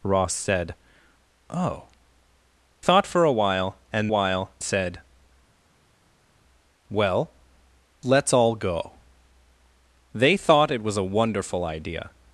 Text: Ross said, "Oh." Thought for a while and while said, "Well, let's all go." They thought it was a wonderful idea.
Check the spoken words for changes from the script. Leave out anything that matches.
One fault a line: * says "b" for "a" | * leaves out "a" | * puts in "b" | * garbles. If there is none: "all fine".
all fine